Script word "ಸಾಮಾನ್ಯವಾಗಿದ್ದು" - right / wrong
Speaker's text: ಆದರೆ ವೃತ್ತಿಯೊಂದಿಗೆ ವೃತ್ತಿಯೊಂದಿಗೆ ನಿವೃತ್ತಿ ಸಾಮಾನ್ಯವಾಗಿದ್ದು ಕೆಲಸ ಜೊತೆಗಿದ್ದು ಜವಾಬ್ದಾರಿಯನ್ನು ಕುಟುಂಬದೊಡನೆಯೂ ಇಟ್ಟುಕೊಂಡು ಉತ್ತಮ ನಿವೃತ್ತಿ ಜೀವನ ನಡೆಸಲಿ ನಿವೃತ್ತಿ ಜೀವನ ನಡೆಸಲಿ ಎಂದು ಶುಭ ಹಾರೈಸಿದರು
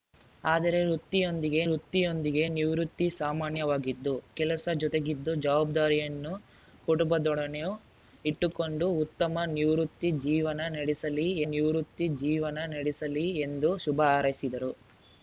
right